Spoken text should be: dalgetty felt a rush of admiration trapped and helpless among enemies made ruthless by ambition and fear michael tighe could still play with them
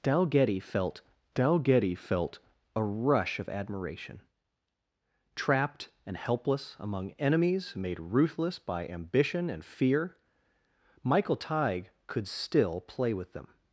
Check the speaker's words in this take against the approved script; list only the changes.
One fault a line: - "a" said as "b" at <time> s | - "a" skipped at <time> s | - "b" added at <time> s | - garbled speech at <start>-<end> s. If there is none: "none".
- "dalgetty felt" added at 1.3 s